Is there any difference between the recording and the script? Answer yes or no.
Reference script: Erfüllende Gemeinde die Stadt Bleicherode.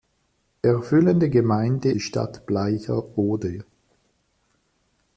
no